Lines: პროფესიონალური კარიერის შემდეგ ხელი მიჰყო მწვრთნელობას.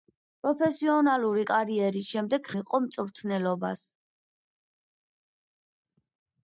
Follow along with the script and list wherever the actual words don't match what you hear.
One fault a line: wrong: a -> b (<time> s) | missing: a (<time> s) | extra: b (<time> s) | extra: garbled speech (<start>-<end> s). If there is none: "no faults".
missing: ხელი (2.5 s)